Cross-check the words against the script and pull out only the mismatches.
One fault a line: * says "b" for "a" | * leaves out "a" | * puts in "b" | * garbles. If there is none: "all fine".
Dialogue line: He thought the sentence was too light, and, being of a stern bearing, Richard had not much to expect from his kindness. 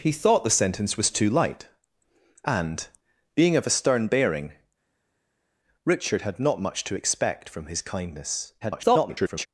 * garbles